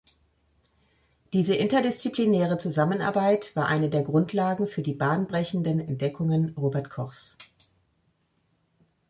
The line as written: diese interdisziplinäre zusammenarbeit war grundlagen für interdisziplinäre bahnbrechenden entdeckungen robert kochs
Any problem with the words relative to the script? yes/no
yes